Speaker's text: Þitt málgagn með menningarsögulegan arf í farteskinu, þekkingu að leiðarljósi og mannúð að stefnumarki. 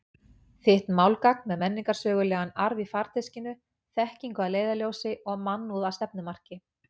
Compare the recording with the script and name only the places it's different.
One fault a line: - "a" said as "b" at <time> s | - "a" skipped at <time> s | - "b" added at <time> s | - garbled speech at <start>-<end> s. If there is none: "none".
none